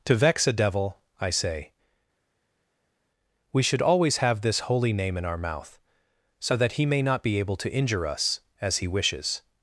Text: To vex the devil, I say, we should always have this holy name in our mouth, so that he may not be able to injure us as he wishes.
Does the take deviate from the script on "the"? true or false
true